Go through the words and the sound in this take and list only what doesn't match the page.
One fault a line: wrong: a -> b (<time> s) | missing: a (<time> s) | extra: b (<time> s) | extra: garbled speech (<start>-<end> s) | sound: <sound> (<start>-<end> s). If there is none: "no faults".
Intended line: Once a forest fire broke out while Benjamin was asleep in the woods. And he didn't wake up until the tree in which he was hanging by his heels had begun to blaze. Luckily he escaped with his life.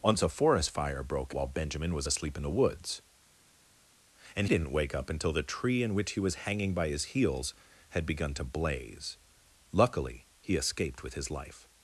missing: out (1.4 s)
missing: he (4.5 s)